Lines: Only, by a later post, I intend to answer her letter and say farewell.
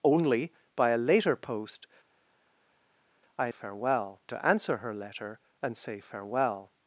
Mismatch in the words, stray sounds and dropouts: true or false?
true